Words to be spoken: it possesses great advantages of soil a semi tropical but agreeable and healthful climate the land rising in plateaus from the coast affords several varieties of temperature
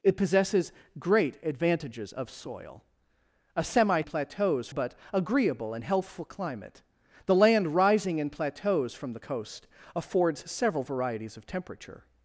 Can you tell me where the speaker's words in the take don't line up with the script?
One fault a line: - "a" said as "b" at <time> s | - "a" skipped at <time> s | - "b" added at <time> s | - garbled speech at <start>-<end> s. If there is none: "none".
- "tropical" said as "plateaus" at 4.0 s